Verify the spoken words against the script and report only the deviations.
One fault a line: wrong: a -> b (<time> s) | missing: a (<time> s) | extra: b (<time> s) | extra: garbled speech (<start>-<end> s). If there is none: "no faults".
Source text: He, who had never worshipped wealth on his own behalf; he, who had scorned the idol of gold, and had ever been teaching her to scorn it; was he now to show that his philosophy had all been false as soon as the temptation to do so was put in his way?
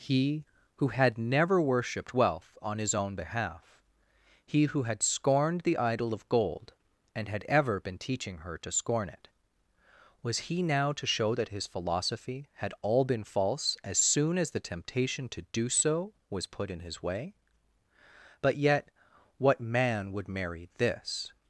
extra: But yet what man would marry this (18.4 s)